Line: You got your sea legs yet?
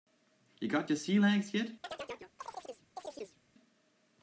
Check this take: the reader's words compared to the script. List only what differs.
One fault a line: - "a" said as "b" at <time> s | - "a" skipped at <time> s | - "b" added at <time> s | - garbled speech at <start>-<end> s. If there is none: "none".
none